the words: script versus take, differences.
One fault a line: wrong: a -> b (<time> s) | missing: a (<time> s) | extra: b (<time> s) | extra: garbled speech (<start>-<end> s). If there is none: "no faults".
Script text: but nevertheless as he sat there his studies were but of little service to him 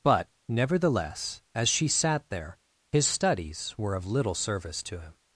wrong: he -> she (1.7 s)
missing: but (4.0 s)